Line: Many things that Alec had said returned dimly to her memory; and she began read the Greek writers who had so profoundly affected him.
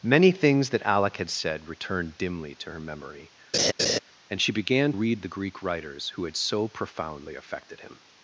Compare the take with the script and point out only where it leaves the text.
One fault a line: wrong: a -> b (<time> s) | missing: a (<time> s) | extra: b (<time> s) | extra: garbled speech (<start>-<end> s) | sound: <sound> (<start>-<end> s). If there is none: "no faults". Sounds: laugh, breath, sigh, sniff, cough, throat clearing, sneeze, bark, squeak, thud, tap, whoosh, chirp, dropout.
sound: laugh (3.5-4.0 s)